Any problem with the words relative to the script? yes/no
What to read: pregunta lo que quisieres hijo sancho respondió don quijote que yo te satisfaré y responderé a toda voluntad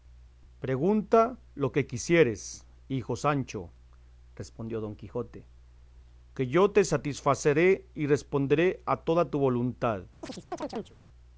yes